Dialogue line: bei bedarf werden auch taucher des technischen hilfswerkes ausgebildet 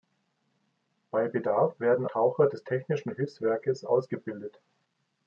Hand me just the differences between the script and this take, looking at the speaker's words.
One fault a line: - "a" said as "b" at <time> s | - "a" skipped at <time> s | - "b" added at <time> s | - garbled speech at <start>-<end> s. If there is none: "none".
- "auch" skipped at 2.1 s